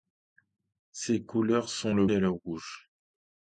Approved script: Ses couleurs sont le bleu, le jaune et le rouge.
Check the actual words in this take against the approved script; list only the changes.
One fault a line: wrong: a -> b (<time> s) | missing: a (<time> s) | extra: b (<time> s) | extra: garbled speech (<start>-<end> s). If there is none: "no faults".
missing: bleu le jaune (2.1 s)